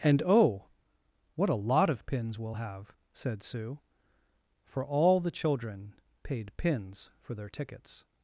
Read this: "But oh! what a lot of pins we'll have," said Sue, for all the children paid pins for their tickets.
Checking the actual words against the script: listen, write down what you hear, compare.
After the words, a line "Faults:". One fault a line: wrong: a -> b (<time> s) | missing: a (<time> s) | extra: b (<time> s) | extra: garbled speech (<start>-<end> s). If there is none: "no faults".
"And oh! what a lot of pins we'll have," said Sue, for all the children paid pins for their tickets.
Faults:
wrong: But -> And (0.0 s)